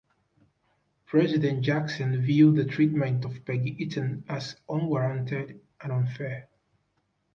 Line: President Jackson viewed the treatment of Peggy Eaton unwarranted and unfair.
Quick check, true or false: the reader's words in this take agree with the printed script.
false